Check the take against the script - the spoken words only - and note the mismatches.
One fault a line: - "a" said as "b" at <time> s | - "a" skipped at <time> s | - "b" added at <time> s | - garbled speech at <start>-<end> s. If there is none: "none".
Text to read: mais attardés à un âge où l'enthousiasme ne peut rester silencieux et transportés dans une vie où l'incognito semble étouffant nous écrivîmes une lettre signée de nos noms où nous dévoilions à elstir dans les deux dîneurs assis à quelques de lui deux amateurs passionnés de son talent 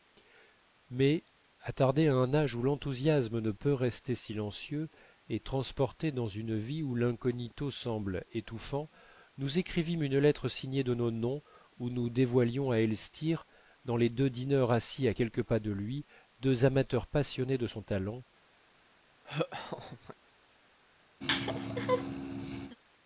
- "pas" added at 15.4 s